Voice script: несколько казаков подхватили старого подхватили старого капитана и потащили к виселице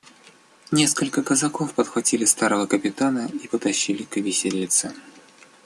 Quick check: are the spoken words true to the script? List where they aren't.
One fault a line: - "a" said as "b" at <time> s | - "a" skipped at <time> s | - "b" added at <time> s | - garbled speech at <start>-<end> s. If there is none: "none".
- "подхватили старого" skipped at 2.7 s